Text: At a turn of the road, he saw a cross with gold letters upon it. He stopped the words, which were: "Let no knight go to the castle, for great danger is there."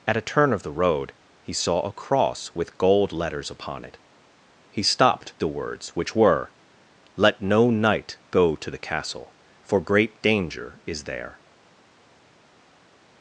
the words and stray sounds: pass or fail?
pass